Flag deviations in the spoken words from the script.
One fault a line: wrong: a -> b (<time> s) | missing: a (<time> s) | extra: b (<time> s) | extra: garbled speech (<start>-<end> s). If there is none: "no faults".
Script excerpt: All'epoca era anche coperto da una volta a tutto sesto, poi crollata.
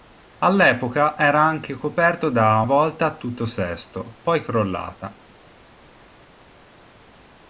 missing: una (2.6 s)